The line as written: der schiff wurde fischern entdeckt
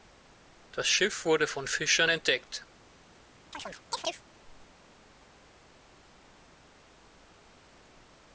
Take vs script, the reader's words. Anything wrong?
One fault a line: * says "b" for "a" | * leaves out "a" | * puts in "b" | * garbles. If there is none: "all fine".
* says "das" for "der"
* puts in "von"